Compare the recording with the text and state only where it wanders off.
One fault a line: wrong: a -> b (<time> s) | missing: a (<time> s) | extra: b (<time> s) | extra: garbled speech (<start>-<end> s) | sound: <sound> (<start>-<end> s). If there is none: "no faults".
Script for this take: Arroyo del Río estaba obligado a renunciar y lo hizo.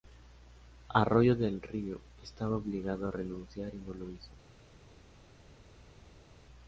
extra: no (3.8 s)